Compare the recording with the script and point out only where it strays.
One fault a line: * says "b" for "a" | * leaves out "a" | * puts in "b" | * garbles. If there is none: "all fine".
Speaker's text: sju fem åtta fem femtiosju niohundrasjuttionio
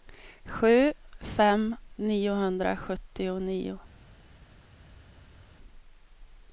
* leaves out "åtta fem femtiosju"